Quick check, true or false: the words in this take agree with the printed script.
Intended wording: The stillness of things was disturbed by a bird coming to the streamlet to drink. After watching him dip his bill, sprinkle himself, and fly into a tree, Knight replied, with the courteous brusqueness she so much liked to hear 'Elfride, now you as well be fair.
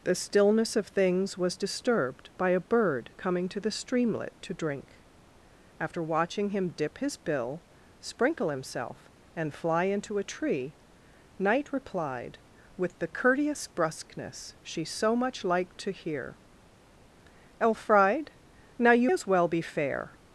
true